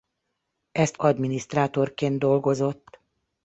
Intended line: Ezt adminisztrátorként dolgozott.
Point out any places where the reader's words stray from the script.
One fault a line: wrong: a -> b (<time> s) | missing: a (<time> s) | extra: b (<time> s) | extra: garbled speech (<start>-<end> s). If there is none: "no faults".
no faults